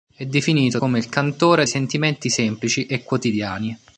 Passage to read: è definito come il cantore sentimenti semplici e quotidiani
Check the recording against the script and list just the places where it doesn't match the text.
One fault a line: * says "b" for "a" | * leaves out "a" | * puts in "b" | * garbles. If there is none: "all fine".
all fine